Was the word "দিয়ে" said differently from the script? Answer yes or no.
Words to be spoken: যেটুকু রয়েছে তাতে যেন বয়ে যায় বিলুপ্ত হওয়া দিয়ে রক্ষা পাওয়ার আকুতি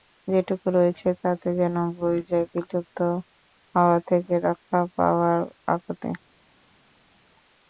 yes